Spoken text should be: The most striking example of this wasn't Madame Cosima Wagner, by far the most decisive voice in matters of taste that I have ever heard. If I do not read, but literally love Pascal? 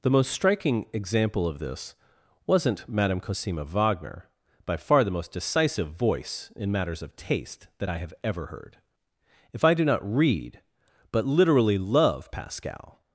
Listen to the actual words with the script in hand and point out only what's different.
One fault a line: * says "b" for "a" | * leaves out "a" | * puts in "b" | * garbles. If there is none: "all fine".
all fine